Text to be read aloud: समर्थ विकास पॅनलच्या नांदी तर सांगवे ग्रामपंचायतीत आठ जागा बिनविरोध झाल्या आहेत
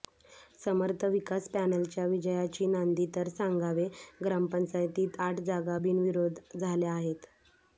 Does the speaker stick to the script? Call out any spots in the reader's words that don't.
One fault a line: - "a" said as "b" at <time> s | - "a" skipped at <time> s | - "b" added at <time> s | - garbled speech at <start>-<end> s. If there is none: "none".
- "विजयाची" added at 2.0 s